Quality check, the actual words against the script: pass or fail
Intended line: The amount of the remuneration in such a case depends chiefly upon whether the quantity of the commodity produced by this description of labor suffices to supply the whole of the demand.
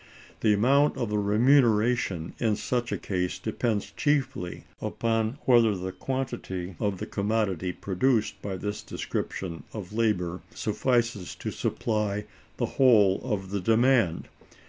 pass